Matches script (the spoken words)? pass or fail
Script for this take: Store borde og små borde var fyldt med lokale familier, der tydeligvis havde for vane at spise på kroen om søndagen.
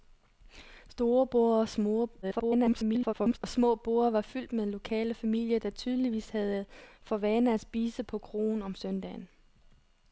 fail